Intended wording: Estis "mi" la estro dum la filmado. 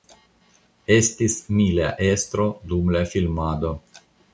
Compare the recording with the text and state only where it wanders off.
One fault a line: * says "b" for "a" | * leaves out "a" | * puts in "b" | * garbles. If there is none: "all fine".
all fine